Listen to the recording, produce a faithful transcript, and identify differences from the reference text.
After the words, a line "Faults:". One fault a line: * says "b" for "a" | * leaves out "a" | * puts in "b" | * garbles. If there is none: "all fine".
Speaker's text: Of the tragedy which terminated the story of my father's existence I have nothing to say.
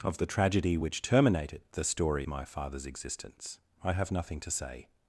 Of the tragedy which terminated the story my father's existence I have nothing to say.
Faults:
* leaves out "of"